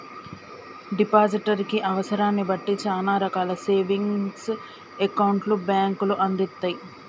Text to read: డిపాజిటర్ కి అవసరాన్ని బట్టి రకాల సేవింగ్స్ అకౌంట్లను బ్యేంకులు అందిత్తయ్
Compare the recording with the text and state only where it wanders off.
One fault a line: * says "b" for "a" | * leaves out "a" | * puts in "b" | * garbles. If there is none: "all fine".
* puts in "చానా"